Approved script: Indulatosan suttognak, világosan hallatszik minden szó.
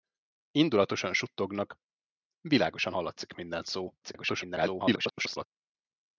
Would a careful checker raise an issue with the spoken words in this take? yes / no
yes